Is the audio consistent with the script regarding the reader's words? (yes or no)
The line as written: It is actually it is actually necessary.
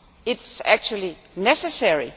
no